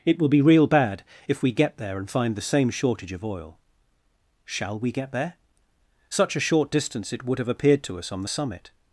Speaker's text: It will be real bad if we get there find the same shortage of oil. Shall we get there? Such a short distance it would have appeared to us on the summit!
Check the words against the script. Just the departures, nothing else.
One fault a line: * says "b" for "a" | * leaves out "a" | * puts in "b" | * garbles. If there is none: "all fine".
* puts in "and"